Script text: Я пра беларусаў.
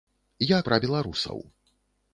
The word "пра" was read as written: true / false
true